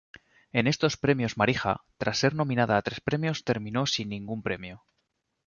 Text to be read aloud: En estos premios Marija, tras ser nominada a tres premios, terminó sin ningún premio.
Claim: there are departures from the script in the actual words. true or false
false